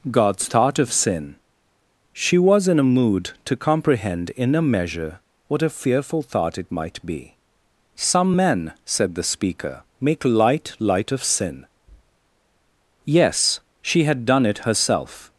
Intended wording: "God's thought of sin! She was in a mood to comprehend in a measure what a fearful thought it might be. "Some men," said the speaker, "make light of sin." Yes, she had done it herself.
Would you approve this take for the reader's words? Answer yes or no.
no